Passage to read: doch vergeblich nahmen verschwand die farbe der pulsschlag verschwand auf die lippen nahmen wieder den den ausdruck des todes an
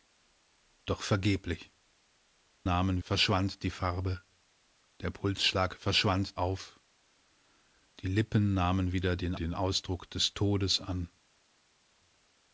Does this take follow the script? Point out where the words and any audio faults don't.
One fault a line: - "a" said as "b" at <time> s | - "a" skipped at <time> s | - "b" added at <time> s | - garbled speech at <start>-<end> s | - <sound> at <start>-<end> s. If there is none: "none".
none